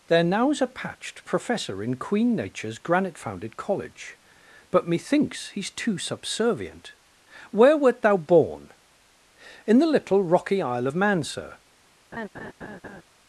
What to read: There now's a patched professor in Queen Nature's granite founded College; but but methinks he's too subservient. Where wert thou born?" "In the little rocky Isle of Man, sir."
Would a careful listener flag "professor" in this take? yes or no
no